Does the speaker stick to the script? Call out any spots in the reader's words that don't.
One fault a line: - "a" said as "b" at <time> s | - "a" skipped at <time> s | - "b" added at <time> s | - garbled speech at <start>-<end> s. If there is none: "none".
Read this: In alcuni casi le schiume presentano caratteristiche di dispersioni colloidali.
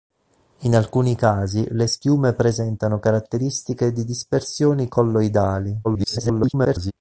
- garbled speech at 5.8-6.9 s